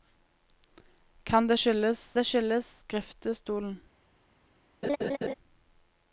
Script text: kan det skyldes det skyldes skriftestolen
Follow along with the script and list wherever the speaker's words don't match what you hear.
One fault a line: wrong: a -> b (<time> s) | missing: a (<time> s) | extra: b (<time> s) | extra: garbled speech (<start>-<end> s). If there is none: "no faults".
no faults